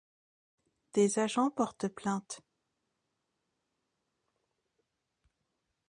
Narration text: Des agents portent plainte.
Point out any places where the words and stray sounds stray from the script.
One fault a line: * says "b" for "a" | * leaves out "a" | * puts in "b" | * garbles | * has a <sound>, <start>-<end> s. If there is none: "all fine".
all fine